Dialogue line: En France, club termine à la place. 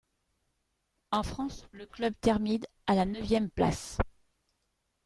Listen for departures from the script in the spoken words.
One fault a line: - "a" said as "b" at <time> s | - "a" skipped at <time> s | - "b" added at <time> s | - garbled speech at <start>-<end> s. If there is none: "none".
- "le" added at 1.7 s
- "neuvième" added at 3.0 s